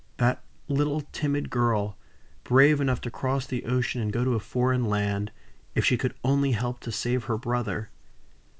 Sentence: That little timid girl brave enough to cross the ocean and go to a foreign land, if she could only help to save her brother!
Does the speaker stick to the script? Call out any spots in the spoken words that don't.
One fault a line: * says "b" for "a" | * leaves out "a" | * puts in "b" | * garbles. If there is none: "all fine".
all fine